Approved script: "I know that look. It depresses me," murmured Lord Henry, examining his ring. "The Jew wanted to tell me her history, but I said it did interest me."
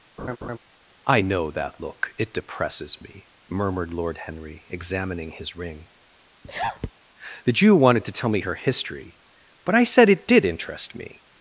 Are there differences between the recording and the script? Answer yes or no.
no